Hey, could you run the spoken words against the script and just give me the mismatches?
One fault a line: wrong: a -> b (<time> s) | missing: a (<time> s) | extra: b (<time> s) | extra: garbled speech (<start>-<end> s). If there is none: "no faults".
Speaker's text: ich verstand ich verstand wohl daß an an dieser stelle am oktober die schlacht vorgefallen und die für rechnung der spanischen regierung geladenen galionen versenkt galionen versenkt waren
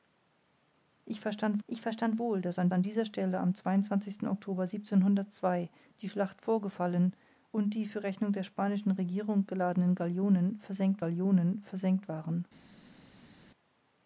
no faults